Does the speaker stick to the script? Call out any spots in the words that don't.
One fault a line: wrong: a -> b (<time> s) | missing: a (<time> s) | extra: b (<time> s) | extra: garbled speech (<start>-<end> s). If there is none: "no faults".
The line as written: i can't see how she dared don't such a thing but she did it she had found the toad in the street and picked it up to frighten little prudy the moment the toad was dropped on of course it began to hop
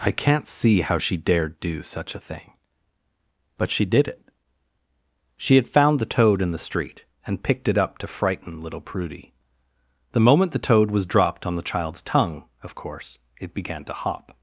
wrong: don't -> do (1.6 s)
extra: the child's tongue (11.6 s)